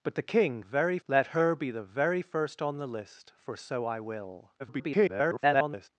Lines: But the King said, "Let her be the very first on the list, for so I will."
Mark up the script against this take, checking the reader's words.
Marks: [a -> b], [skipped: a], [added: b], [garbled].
But the King [said, -> very] "Let her be the very first on the list, for so I will." [garbled]